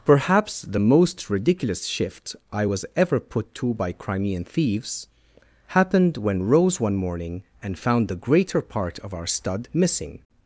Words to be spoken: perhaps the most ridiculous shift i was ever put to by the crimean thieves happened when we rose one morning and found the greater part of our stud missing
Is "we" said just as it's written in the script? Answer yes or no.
no